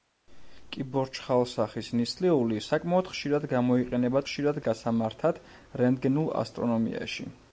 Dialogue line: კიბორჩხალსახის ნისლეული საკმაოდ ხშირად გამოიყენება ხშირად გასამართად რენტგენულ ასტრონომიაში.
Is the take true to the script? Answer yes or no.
yes